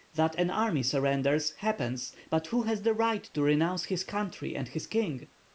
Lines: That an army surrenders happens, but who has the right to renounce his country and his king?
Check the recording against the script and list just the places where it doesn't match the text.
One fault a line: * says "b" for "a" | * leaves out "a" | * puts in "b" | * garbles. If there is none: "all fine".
all fine